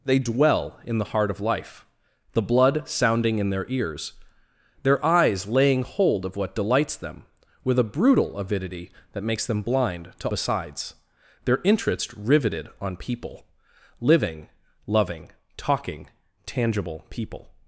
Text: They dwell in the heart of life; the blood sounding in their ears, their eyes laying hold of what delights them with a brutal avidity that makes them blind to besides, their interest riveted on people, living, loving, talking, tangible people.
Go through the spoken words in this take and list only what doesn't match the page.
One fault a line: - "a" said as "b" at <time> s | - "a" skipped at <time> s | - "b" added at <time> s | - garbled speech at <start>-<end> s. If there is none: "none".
none